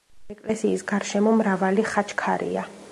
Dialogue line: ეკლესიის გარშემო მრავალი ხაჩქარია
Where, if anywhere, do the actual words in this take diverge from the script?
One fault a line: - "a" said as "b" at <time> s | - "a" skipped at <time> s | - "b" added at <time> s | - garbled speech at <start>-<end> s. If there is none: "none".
none